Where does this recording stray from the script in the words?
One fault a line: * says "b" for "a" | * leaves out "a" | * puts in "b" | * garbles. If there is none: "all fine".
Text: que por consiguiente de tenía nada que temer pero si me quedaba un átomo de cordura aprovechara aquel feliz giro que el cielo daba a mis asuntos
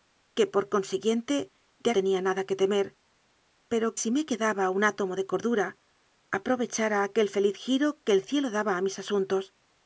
all fine